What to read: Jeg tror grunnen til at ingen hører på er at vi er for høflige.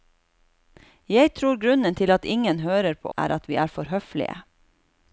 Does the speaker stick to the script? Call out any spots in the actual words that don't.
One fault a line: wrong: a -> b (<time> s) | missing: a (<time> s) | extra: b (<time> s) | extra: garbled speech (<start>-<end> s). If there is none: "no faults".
no faults